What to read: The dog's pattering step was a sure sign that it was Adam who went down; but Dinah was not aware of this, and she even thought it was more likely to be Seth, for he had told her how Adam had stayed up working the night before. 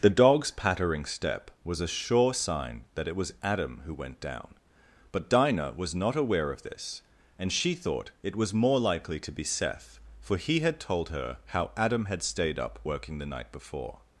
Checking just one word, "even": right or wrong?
wrong